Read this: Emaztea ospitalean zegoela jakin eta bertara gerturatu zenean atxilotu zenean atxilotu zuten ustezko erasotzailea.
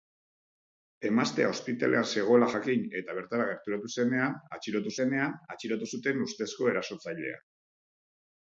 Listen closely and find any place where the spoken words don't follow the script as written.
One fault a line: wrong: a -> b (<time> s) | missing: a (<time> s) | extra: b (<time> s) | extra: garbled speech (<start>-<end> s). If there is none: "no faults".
no faults